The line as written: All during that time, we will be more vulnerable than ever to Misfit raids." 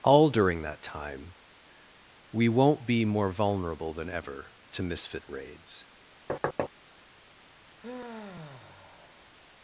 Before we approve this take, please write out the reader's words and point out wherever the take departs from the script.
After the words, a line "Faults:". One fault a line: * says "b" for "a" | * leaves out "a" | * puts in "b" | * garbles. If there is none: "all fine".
All during that time, we won't be more vulnerable than ever to Misfit raids."
Faults:
* says "won't" for "will"